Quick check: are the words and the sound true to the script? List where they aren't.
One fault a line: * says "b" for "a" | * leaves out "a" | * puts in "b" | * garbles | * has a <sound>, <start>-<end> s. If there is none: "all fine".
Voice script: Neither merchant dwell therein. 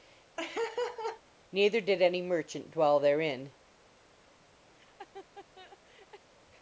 * has a laugh, 0.4-1.2 s
* puts in "did any"
* has a laugh, 4.7-6.3 s